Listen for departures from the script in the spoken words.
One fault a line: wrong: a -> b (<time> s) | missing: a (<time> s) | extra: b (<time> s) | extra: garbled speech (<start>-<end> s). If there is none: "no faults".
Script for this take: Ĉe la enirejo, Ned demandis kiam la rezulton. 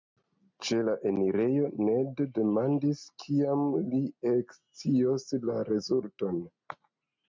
extra: li ekscios (3.9 s)